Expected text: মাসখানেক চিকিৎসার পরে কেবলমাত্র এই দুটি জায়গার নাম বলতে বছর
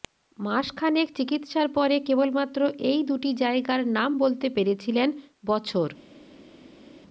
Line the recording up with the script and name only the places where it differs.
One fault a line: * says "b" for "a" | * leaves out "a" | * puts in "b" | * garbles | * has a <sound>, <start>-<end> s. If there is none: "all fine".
* puts in "পেরেছিলেন"